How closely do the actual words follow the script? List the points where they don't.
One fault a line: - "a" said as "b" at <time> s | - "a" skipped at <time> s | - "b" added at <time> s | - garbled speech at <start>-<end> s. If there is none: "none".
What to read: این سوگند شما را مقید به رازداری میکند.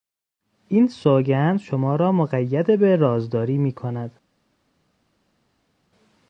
none